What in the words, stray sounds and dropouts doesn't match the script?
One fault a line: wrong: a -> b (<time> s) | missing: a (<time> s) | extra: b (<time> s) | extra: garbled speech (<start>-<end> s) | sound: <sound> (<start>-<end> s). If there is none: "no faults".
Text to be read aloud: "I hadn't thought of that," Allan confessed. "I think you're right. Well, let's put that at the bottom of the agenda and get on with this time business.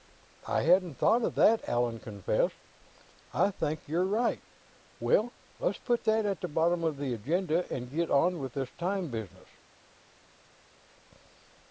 no faults